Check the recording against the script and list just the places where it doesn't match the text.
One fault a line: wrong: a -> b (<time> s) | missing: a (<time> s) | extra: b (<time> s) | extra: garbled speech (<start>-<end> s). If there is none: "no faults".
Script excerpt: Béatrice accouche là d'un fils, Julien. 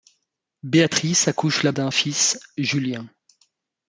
no faults